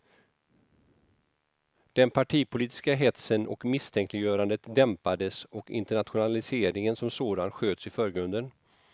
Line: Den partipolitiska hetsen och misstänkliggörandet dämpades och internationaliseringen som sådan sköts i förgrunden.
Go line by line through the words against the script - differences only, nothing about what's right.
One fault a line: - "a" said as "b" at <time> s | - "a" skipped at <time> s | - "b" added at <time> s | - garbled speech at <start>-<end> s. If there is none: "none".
none